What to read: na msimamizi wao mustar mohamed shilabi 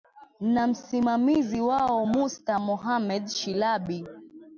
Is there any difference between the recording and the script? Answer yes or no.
no